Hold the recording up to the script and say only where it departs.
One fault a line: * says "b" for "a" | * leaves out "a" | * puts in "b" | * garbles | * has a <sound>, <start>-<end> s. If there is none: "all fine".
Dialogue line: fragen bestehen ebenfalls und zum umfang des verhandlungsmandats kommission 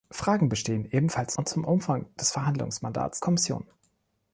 all fine